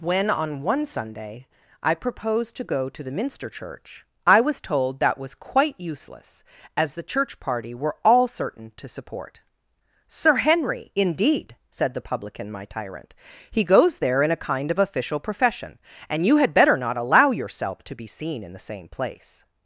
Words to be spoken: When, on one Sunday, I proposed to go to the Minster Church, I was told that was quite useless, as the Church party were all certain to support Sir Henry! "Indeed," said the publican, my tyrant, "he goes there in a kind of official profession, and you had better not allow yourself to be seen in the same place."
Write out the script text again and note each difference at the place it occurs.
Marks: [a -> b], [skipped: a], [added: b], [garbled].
When, on one Sunday, I proposed to go to the Minster Church, I was told that was quite useless, as the Church party were all certain to support Sir Henry! "Indeed," said the publican, my tyrant, "he goes there in a kind of official profession, and you had better not allow yourself to be seen in the same place."